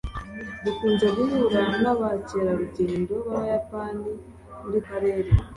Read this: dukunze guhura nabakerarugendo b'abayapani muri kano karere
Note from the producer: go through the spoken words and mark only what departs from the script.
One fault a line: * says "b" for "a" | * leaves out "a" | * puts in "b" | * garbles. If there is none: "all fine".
* leaves out "kano"